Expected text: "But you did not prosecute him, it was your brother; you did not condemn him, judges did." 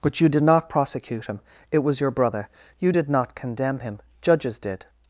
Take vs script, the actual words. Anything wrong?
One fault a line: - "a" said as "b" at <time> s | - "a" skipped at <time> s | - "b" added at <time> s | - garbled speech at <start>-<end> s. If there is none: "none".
none